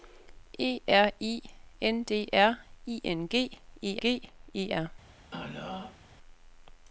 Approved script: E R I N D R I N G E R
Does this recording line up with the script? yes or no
no